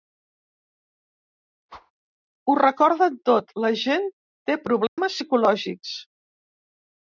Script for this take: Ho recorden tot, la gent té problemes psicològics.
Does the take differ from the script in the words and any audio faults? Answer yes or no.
yes